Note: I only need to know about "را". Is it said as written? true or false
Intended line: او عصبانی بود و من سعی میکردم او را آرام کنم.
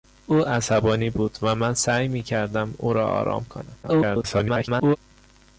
true